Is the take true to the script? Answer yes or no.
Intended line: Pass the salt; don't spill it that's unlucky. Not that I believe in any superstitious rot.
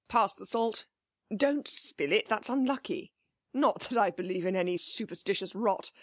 yes